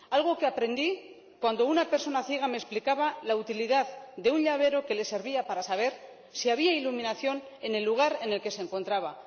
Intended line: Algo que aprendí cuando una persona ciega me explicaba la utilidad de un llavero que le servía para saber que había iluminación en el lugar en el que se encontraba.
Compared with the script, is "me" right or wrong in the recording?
right